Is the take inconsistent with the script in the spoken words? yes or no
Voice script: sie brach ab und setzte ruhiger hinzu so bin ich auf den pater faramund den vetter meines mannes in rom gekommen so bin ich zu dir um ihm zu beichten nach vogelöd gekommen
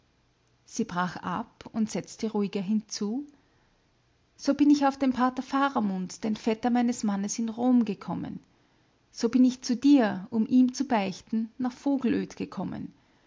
no